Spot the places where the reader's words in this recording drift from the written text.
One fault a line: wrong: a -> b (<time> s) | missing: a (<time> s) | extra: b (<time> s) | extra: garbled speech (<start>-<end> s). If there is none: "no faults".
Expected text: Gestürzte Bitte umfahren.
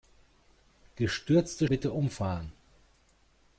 no faults